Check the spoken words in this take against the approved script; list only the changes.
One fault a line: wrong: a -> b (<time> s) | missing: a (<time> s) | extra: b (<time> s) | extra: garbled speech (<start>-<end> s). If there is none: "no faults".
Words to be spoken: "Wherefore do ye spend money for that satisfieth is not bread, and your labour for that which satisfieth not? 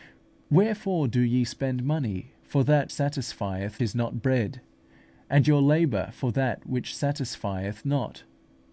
no faults